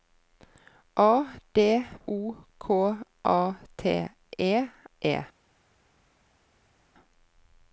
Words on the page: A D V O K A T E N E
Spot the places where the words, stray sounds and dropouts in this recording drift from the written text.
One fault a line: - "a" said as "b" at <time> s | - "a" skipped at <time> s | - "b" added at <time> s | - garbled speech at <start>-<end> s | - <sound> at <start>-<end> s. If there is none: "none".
- "V" skipped at 1.9 s
- "N" skipped at 4.7 s